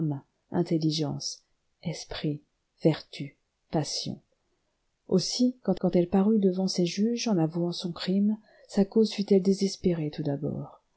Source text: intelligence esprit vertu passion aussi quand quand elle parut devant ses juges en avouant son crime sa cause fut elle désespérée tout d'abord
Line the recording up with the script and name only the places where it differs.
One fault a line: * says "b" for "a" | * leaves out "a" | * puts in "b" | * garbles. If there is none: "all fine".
all fine